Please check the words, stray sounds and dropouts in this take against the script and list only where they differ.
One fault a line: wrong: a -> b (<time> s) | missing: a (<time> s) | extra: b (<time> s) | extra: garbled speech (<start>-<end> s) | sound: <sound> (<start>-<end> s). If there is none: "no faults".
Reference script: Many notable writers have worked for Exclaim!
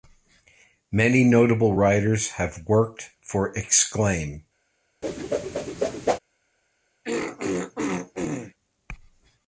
sound: whoosh (5.0-6.2 s)
sound: throat clearing (7.0-8.5 s)